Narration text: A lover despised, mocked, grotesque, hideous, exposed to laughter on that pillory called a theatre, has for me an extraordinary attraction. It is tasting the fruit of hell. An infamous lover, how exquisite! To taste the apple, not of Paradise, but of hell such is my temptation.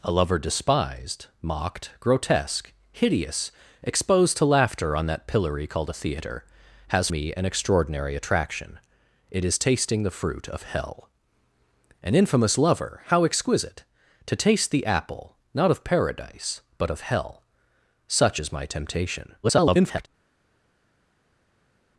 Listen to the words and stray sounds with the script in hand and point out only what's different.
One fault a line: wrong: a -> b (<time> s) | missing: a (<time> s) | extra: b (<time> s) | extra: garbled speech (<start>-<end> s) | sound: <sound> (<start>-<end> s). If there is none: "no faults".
missing: for (7.1 s)
extra: garbled speech (19.4-20.1 s)